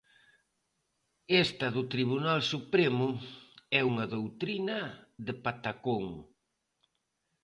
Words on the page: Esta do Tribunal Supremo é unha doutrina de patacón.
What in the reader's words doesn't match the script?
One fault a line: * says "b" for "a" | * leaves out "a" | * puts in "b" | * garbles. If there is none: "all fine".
all fine